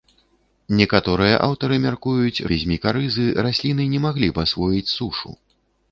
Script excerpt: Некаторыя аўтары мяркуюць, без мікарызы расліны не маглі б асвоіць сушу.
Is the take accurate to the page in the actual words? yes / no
yes